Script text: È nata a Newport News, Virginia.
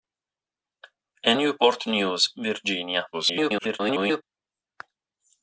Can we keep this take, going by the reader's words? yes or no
no